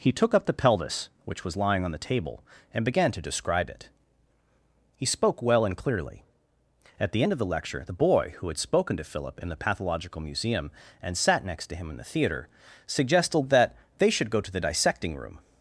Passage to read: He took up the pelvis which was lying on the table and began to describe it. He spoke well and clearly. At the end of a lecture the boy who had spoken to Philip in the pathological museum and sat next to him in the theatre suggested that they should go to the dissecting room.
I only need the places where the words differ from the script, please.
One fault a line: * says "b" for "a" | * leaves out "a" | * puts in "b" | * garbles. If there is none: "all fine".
* says "the" for "a"